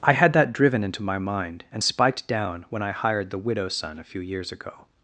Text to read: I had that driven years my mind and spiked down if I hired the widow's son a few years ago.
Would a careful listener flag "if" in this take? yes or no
yes